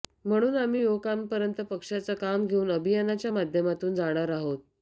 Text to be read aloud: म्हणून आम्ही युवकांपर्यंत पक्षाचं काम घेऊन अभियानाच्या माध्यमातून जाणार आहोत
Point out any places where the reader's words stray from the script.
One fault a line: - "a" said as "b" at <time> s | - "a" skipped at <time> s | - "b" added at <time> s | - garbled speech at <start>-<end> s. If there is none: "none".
none